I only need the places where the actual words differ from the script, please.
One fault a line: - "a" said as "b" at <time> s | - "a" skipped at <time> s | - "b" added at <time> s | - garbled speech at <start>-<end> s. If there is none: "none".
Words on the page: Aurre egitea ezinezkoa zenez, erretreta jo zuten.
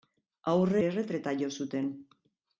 - "egitea ezinezkoa zenez" skipped at 0.8 s